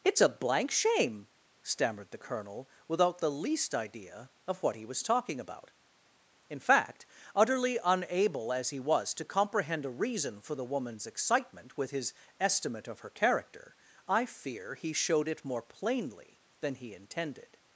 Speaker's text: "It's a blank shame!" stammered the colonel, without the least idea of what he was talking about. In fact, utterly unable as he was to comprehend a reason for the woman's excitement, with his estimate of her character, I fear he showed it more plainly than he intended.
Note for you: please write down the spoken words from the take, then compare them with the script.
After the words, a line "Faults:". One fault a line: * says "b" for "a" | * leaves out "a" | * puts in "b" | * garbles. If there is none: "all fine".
"It's a blank shame!" stammered the colonel, without the least idea of what he was talking about. In fact, utterly unable as he was to comprehend a reason for the woman's excitement, with his estimate of her character, I fear he showed it more plainly than he intended.
Faults:
all fine